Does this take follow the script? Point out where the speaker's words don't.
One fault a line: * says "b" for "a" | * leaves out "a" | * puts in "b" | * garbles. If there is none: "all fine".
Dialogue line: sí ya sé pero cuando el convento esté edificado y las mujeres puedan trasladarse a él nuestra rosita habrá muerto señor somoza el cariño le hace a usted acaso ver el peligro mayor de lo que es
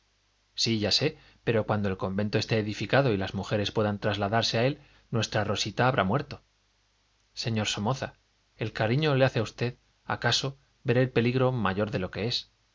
all fine